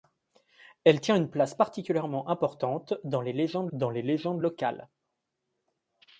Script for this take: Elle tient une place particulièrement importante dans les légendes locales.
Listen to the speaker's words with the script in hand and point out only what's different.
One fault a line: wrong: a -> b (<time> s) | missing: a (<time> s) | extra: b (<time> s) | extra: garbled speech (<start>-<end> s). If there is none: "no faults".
extra: dans les légendes (3.7 s)